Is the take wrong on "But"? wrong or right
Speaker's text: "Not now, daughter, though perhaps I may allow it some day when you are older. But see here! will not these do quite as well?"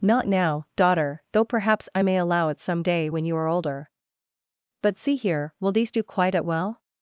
right